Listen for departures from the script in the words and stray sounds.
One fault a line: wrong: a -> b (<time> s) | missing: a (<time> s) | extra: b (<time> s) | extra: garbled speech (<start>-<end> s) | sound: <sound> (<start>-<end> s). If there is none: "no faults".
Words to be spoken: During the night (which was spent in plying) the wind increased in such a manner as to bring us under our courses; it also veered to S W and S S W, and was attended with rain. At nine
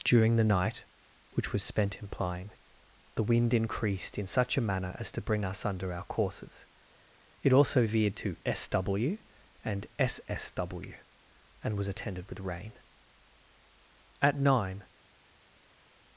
no faults